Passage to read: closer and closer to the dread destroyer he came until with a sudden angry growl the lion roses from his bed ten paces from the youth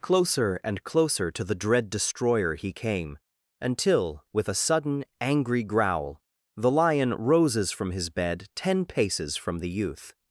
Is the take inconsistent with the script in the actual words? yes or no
no